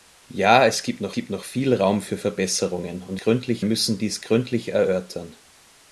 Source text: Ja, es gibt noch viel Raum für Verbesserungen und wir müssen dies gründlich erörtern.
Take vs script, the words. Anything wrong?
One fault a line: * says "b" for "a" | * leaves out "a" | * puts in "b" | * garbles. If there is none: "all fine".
* puts in "gibt noch"
* says "gründlich" for "wir"